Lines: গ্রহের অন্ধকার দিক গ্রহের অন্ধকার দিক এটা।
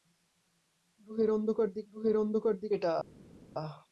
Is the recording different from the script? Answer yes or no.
no